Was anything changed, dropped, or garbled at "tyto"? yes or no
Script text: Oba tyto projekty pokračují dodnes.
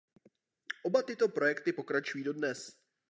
no